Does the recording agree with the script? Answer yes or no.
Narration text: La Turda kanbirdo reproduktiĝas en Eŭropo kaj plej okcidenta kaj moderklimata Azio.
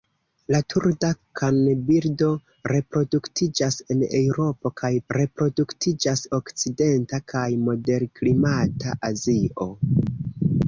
no